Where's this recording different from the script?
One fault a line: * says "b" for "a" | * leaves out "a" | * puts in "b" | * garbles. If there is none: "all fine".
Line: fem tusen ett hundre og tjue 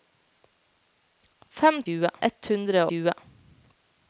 * says "tjue" for "tusen"
* leaves out "og"